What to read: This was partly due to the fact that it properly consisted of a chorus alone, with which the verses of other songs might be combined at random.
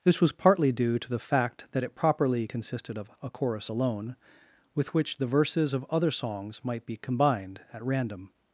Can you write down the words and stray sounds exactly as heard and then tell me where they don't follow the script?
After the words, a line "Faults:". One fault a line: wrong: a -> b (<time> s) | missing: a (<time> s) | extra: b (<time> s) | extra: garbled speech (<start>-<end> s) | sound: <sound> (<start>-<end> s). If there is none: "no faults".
This was partly due to the fact that it properly consisted of a chorus alone, with which the verses of other songs might be combined at random.
Faults:
no faults